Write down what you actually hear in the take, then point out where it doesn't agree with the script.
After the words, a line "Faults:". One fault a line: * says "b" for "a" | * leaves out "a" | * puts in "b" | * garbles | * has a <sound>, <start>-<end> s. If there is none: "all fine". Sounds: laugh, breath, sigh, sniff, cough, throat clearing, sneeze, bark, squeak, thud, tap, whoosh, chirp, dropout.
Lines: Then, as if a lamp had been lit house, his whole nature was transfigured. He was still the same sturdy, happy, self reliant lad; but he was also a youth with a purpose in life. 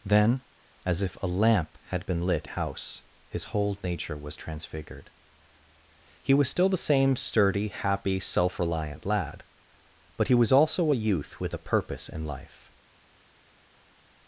Then, as if a lamp had been lit house, his whole nature was transfigured. He was still the same sturdy, happy, self reliant lad; but he was also a youth with a purpose in life.
Faults:
all fine